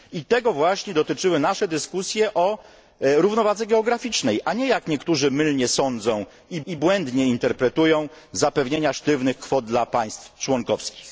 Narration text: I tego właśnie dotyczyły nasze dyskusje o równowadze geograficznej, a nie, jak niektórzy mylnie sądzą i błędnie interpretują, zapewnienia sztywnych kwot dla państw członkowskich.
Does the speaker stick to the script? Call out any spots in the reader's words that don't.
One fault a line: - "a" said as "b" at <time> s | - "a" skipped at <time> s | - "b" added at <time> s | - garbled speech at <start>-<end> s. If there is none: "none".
- "i" added at 6.7 s